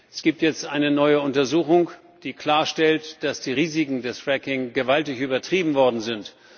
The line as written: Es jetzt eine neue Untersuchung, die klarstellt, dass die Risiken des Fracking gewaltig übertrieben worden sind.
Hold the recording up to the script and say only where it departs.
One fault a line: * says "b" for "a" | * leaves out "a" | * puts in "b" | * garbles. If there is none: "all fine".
* puts in "gibt"